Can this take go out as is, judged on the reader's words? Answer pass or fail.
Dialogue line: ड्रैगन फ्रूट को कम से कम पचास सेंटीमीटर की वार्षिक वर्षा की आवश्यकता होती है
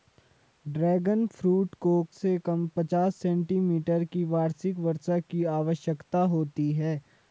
fail